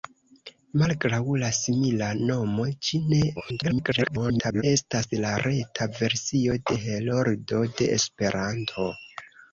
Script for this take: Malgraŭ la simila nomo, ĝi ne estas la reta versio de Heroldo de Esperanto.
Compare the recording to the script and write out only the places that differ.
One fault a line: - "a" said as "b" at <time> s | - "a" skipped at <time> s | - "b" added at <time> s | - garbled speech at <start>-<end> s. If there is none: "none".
- garbled speech at 3.4-4.6 s